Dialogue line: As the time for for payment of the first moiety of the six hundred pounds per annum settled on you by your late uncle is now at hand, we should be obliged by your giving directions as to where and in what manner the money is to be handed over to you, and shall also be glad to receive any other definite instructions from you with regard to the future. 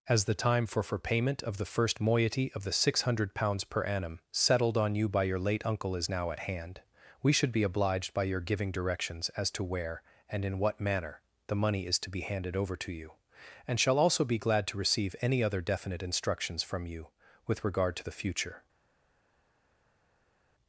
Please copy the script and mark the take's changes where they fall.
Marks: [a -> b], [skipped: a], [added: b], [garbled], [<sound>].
As the time for for payment of the first moiety of the six hundred pounds per annum settled on you by your late uncle is now at hand, we should be obliged by your giving directions as to where and in what manner the money is to be handed over to you, and shall also be glad to receive any other definite instructions from you with regard to the future.